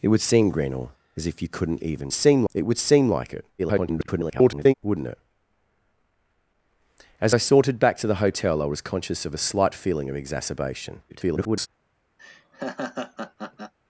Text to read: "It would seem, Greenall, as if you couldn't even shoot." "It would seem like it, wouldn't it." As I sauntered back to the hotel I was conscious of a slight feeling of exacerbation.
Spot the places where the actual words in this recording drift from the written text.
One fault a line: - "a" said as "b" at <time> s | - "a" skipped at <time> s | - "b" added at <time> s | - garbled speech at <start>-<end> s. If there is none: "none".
- "shoot" said as "seem" at 2.1 s
- garbled speech at 3.6-4.7 s
- garbled speech at 11.1-11.7 s